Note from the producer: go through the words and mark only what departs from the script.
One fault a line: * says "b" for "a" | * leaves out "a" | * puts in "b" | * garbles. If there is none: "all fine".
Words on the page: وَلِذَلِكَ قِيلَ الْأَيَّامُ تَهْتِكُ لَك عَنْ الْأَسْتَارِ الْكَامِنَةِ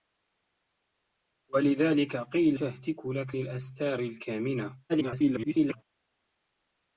* leaves out "الْأَيَّامُ"
* leaves out "عَنْ"
* garbles